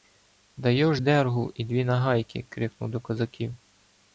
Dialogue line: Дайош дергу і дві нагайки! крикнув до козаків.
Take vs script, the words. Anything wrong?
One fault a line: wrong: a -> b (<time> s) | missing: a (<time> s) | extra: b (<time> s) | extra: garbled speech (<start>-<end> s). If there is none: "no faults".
no faults